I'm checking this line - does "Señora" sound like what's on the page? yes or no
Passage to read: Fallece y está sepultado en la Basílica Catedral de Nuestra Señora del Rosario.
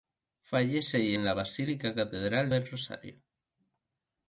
no